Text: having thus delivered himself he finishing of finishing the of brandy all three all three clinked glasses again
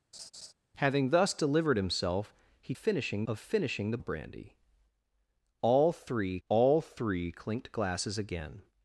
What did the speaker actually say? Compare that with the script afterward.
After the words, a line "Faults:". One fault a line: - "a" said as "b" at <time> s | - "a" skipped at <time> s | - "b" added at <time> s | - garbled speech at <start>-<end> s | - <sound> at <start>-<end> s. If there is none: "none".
having thus delivered himself he finishing of finishing the of brandy all three all three clinked glasses again
Faults:
- laugh at 0.1-0.5 s